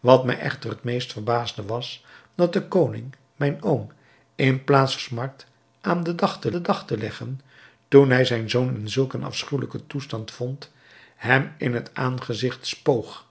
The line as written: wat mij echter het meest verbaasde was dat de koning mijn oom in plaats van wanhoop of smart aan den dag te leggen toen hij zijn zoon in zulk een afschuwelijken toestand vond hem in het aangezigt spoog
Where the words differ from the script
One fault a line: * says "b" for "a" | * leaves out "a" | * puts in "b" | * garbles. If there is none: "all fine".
* says "smart aan den dag te" for "van wanhoop of smart aan"